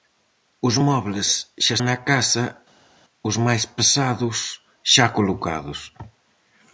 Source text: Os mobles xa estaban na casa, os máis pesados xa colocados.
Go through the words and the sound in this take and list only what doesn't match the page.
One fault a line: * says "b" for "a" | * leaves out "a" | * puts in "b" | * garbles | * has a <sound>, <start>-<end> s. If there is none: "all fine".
* leaves out "estaban"